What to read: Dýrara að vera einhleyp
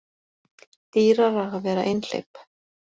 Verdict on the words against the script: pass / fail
pass